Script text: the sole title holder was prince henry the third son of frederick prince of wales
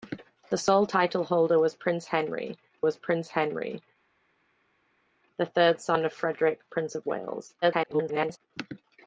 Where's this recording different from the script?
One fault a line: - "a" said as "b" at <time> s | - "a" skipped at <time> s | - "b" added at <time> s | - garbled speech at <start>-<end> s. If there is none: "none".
- "was prince henry" added at 2.8 s
- garbled speech at 7.6-8.4 s